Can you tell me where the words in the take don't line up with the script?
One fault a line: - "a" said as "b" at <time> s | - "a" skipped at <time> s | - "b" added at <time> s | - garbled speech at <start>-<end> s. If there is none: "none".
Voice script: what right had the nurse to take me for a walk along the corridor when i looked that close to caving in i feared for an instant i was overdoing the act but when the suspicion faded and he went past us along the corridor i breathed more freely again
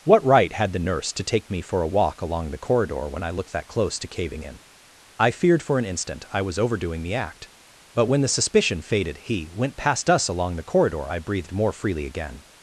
- "and" skipped at 9.2 s